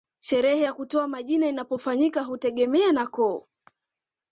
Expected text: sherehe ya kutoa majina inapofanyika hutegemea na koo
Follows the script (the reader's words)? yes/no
yes